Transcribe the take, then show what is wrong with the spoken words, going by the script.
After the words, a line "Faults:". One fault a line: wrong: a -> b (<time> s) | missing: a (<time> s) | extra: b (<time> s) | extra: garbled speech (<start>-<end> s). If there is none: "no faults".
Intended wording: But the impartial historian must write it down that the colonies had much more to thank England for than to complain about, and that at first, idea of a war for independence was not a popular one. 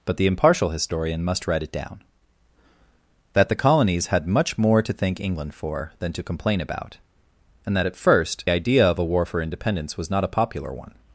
But the impartial historian must write it down that the colonies had much more to thank England for than to complain about, and that at first, idea of a war for independence was not a popular one.
Faults:
no faults